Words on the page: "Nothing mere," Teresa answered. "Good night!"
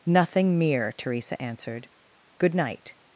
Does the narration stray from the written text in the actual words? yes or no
no